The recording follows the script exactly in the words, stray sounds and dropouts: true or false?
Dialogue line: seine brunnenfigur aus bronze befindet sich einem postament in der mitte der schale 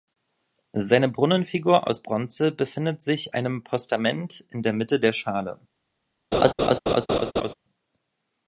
false